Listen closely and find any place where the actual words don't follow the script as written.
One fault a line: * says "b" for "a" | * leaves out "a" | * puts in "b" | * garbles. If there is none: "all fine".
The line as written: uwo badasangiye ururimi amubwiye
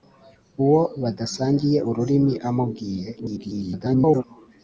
* garbles